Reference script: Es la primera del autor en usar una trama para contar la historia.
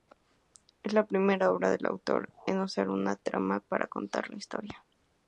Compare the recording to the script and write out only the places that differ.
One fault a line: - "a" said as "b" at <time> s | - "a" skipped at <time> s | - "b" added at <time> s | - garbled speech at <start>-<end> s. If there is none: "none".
- "obra" added at 1.5 s